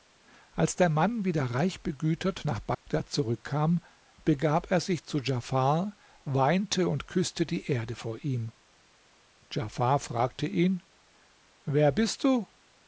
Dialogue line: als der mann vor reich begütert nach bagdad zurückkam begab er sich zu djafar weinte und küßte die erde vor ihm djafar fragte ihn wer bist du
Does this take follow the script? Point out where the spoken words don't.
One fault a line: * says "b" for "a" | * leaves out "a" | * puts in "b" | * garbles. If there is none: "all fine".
* says "wieder" for "vor"